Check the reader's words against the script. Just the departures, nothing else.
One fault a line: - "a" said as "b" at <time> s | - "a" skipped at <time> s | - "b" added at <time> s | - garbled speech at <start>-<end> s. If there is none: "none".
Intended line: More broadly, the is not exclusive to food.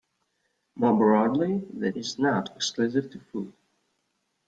none